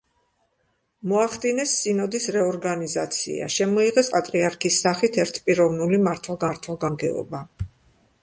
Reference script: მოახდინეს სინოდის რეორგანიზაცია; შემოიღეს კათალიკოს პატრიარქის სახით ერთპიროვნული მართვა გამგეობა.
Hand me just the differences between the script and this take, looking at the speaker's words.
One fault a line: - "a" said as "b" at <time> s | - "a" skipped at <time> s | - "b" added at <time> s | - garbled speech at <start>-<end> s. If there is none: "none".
- "კათალიკოს" skipped at 4.1 s
- "მართვა" added at 6.5 s